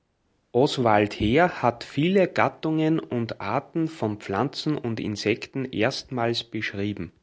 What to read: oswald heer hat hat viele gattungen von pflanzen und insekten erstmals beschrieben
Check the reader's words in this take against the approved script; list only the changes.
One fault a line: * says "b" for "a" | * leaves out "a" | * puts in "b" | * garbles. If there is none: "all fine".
* leaves out "hat"
* puts in "und arten"